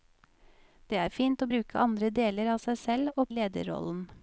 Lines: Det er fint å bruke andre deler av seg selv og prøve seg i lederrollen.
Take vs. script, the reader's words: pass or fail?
fail